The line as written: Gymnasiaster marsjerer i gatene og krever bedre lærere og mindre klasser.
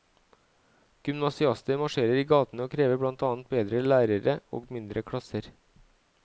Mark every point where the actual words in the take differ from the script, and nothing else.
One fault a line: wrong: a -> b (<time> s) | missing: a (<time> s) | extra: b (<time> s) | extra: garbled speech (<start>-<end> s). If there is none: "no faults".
extra: blant annet (3.0 s)